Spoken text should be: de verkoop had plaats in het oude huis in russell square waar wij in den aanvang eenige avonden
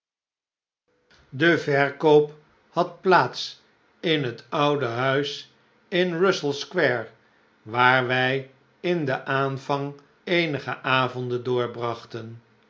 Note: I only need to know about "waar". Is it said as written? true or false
true